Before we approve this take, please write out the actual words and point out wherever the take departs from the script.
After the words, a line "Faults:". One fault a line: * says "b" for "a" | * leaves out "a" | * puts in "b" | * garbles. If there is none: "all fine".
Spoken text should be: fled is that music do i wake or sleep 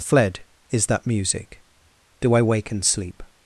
fled is that music do i wake and sleep
Faults:
* says "and" for "or"